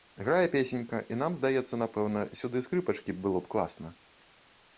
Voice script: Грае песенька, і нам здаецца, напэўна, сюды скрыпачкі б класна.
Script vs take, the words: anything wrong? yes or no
yes